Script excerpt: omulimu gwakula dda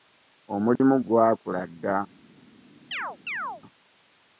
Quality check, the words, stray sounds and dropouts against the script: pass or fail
fail